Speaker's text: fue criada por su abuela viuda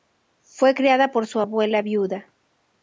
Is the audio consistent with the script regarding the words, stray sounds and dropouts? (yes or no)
yes